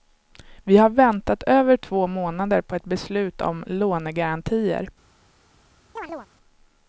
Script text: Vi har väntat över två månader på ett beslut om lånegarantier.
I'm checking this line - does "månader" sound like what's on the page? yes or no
yes